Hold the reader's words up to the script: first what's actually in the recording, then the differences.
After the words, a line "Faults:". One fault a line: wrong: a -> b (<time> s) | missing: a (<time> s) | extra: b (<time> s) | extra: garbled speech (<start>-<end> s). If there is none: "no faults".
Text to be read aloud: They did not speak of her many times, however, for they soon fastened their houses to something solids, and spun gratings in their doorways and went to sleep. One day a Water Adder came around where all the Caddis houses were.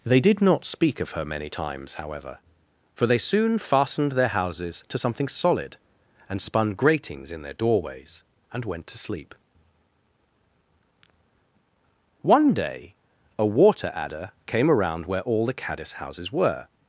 They did not speak of her many times, however, for they soon fastened their houses to something solid, and spun gratings in their doorways and went to sleep. One day a Water Adder came around where all the Caddis houses were.
Faults:
wrong: solids -> solid (5.3 s)